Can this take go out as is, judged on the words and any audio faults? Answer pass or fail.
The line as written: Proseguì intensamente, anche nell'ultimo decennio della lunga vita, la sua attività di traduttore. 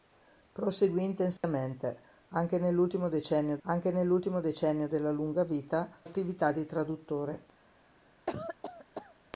fail